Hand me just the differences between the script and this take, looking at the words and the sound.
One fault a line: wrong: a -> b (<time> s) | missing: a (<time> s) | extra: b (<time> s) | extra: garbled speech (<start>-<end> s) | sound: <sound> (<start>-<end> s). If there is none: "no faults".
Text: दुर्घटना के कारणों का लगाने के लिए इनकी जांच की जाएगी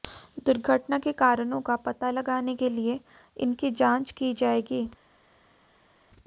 extra: पता (1.9 s)